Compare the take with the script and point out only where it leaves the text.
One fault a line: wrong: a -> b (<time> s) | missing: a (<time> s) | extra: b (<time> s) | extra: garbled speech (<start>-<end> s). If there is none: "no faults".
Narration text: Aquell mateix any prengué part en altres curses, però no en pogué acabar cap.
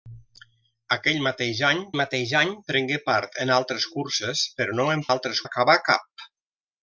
extra: mateix any (2.0 s)
wrong: pogué -> altres (5.1 s)